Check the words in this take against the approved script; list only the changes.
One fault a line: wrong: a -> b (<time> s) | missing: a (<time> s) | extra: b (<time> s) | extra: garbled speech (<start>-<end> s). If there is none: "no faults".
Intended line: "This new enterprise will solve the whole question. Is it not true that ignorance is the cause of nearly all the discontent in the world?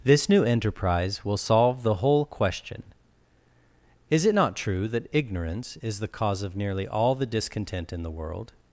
no faults